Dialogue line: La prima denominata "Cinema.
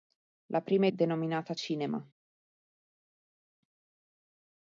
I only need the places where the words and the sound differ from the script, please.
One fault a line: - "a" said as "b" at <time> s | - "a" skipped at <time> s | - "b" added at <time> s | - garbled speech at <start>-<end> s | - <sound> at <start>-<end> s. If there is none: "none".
none